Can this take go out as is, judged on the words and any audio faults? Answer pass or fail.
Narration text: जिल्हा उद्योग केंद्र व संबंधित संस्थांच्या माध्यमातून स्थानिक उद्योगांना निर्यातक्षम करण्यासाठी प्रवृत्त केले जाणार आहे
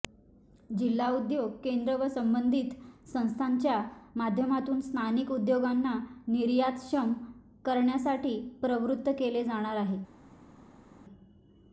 pass